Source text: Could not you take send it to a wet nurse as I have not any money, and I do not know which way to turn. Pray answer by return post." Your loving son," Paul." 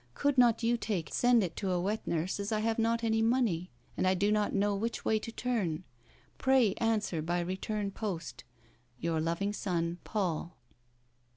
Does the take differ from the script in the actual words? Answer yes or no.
no